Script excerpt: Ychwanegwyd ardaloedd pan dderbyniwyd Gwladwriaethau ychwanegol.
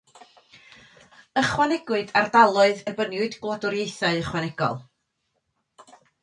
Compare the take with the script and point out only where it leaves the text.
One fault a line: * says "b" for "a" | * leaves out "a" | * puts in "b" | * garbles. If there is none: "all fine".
* leaves out "pan"